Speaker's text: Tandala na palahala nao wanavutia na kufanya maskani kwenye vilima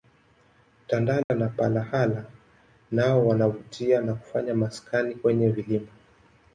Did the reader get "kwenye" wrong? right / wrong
right